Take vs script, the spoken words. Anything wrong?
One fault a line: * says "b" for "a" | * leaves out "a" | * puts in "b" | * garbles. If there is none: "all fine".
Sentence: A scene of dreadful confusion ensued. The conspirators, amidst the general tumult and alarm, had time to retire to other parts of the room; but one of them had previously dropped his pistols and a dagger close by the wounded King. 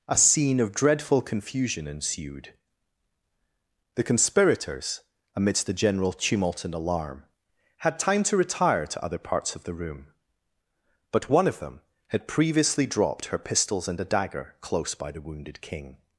* says "her" for "his"